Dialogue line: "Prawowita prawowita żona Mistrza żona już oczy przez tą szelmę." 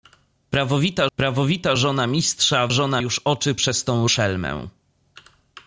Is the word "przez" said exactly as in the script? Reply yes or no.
yes